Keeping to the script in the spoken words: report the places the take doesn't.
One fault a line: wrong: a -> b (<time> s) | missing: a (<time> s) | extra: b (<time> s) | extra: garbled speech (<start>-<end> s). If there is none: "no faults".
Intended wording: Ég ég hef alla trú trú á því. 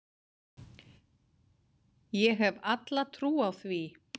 missing: ég (2.4 s)
missing: trú (3.3 s)